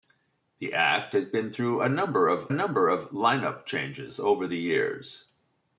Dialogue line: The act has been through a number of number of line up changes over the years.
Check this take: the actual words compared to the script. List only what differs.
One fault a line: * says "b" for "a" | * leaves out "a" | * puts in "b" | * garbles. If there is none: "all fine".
all fine